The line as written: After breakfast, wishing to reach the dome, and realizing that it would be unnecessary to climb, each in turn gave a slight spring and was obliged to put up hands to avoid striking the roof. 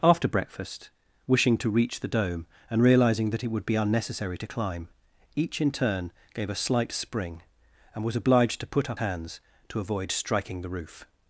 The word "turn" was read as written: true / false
true